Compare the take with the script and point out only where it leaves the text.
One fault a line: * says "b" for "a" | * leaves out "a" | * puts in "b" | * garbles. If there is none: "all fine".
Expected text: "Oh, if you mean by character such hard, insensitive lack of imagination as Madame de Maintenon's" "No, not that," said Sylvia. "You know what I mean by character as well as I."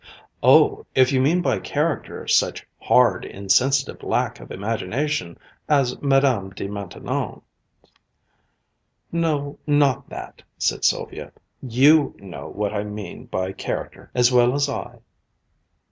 all fine